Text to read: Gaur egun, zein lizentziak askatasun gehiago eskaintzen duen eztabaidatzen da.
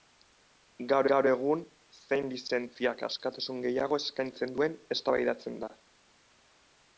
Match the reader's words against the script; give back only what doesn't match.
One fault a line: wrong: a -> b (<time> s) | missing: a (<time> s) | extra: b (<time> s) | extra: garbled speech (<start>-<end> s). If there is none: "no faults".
extra: gaur (1.1 s)